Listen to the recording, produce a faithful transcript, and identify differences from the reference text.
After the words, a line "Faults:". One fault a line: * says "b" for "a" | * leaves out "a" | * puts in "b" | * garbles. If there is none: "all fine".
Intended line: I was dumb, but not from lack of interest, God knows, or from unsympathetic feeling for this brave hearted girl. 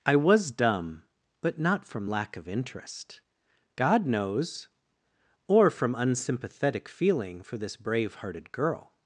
I was dumb, but not from lack of interest, God knows, or from unsympathetic feeling for this brave hearted girl.
Faults:
all fine